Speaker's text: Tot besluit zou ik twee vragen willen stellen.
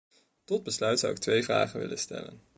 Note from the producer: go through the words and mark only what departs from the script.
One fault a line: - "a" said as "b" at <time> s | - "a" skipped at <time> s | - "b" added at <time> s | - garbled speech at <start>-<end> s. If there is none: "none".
none